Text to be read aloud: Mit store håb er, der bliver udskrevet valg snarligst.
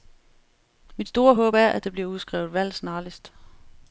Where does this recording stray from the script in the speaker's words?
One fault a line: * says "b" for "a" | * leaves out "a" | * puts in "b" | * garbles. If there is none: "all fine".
* puts in "at"